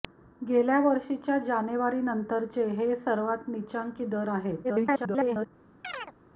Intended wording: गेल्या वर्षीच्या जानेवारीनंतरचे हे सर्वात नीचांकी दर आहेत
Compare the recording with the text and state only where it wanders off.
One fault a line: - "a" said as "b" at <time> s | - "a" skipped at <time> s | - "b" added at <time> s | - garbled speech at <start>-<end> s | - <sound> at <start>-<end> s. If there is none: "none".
- garbled speech at 4.6-5.5 s
- chirp at 5.8-6.1 s